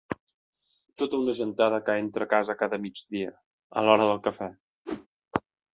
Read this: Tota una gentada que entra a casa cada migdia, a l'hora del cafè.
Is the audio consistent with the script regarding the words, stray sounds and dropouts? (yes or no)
no